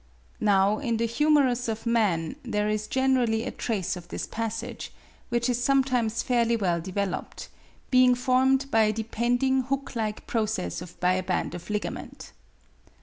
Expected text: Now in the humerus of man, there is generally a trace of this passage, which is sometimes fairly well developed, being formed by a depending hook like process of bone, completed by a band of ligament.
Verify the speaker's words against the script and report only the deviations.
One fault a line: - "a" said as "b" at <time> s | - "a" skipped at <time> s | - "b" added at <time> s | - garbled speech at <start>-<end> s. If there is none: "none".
- "bone completed" skipped at 11.0 s